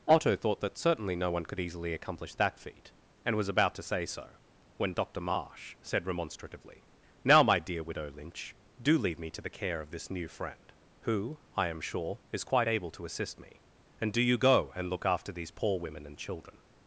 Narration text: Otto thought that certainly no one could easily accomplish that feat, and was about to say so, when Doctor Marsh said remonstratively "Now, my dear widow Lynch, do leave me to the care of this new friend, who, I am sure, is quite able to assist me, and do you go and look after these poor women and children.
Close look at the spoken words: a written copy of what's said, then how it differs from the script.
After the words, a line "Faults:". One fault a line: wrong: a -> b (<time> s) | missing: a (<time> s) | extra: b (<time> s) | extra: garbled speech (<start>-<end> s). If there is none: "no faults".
Otto thought that certainly no one could easily accomplish that feat, and was about to say so, when Doctor Marsh said remonstratively "Now, my dear widow Lynch, do leave me to the care of this new friend, who, I am sure, is quite able to assist me, and do you go and look after these poor women and children.
Faults:
no faults